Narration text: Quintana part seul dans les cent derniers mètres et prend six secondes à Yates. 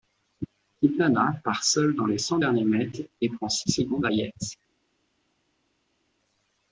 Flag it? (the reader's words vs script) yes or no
no